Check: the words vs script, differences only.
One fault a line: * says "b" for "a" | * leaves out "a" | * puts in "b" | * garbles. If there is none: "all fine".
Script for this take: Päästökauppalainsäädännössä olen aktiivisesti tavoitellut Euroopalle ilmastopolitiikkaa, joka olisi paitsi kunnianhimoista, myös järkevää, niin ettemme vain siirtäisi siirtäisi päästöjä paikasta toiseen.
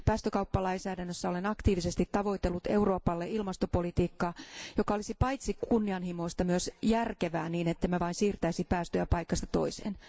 * leaves out "siirtäisi"